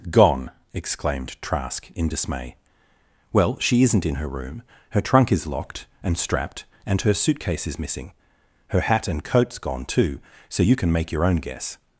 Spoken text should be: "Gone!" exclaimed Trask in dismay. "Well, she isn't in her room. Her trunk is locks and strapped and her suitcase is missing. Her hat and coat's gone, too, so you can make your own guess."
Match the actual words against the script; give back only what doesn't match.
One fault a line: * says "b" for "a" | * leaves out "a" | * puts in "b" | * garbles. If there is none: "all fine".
* says "locked" for "locks"